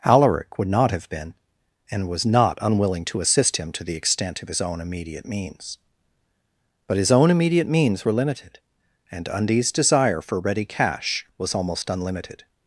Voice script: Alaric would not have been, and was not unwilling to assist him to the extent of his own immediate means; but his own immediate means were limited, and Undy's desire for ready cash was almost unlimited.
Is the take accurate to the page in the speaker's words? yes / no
yes